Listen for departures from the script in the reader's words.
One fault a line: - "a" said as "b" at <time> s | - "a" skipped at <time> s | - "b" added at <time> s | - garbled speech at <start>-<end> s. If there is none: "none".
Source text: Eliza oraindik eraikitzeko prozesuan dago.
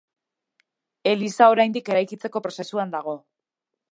none